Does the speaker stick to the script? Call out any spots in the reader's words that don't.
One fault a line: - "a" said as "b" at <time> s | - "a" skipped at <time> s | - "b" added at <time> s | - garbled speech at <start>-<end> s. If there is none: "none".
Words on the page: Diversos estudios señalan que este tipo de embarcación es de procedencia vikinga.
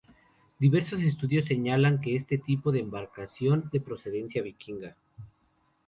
- "es" skipped at 3.7 s